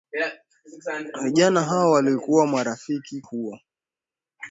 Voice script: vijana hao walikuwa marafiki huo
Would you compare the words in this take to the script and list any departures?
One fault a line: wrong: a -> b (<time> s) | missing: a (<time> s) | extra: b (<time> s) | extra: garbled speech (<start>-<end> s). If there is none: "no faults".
no faults